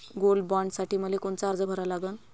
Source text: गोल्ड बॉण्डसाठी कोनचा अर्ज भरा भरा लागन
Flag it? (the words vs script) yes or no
yes